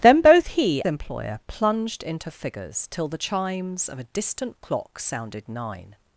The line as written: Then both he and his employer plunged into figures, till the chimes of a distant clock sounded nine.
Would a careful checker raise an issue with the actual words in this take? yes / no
yes